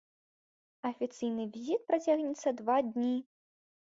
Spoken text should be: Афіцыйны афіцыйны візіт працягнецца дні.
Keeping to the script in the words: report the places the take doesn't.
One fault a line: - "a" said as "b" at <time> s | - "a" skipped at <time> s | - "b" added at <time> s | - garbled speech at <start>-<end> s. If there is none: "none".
- "афіцыйны" skipped at 1.4 s
- "два" added at 2.6 s